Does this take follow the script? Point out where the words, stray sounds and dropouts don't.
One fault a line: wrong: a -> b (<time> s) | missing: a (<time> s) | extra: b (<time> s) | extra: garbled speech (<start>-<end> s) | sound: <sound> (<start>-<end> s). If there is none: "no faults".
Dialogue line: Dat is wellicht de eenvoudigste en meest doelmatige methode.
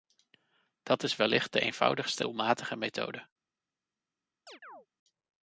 missing: en meest (2.2 s)
sound: chirp (4.5-4.9 s)